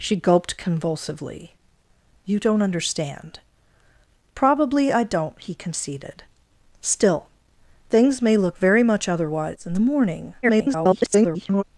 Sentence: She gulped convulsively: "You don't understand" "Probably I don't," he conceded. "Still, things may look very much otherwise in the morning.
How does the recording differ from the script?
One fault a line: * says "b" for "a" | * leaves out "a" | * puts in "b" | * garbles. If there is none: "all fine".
* garbles